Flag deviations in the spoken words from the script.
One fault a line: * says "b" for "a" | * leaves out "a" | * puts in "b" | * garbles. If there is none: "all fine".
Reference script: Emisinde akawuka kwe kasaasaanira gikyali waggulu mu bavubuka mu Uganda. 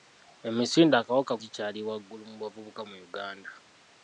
* leaves out "kwe kasaasaanira"